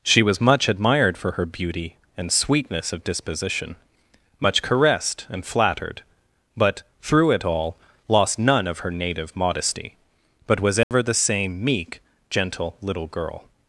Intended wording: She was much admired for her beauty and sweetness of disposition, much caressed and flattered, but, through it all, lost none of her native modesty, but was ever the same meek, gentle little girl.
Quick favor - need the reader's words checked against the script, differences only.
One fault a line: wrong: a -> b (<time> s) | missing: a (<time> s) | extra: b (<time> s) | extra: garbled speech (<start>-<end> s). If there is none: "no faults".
no faults